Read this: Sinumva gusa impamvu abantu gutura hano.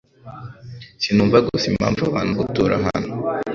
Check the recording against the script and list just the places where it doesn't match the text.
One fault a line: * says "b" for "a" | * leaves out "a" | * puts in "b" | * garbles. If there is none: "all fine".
all fine